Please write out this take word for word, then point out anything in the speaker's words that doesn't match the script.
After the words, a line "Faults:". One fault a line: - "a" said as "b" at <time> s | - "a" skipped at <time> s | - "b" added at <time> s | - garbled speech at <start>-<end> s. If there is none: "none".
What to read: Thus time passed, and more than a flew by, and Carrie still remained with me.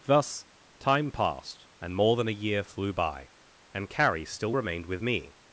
Thus time passed, and more than a year flew by, and Carrie still remained with me.
Faults:
- "year" added at 2.3 s